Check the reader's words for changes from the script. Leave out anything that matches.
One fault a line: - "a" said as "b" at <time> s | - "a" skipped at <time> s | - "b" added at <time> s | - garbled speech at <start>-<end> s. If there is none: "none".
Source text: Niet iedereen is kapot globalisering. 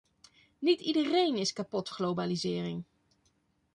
none